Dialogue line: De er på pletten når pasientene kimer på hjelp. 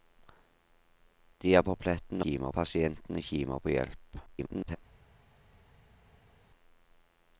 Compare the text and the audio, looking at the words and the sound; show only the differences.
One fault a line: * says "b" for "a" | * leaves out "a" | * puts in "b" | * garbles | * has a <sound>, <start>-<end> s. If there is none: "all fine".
* says "kimer" for "når"
* garbles